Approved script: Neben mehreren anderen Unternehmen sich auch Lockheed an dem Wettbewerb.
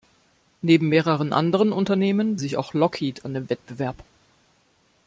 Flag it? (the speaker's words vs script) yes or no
no